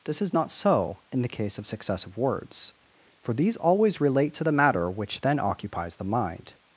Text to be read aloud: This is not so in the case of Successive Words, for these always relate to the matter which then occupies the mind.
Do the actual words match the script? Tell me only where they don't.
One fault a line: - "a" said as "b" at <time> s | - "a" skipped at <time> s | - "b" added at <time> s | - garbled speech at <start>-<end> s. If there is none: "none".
none